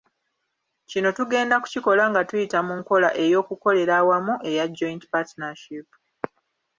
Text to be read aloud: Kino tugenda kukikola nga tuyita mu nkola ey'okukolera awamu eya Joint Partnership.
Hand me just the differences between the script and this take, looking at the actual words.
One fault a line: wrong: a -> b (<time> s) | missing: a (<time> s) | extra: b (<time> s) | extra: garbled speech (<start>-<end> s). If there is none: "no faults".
no faults